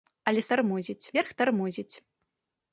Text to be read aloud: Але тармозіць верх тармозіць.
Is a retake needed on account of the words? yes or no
no